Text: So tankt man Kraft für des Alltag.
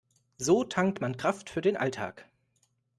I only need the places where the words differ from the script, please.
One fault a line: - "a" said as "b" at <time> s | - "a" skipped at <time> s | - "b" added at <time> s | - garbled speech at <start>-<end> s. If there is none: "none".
- "des" said as "den" at 1.6 s